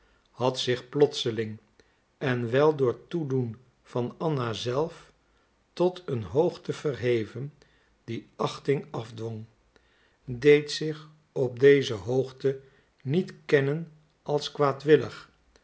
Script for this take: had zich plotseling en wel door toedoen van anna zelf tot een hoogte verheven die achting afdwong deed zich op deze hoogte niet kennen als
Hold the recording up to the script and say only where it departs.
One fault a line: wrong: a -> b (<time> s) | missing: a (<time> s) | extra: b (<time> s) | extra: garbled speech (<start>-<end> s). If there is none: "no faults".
no faults